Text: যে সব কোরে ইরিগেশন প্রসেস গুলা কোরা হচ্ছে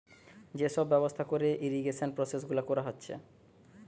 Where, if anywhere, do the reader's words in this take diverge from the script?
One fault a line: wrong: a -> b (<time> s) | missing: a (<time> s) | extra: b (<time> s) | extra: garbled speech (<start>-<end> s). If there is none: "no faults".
extra: ব্যবস্থা (0.9 s)